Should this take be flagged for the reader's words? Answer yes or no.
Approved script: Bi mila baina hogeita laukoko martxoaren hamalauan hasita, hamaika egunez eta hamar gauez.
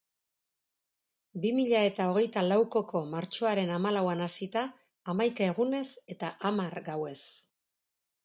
yes